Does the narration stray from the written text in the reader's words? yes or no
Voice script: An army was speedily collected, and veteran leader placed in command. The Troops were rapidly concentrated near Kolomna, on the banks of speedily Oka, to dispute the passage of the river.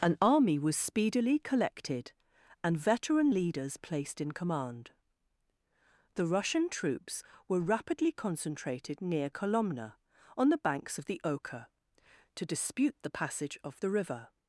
yes